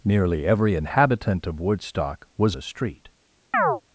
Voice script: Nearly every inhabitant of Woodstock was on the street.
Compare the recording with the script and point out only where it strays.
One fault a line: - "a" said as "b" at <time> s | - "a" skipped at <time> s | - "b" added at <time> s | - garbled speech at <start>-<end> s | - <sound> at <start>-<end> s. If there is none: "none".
- "on" skipped at 2.6 s
- chirp at 3.5-3.8 s